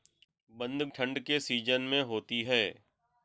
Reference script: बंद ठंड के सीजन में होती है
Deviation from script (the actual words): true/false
false